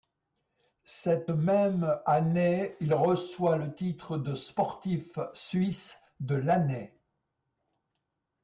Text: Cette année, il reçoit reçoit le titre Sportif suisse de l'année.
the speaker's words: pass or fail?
fail